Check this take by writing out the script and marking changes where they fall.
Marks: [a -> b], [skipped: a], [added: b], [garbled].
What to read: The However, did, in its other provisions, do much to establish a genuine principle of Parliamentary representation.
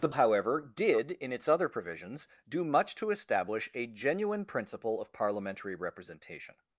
The However, did, in its other provisions, do much to establish a genuine principle of Parliamentary representation.